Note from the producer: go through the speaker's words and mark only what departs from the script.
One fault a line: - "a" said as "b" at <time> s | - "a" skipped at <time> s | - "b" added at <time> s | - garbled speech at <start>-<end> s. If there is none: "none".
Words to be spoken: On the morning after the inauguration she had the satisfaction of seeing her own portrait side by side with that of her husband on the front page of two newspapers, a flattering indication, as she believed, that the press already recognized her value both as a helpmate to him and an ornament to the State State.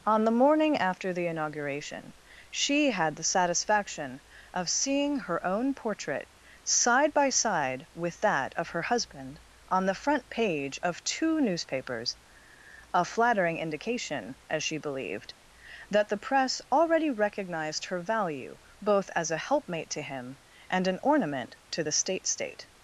none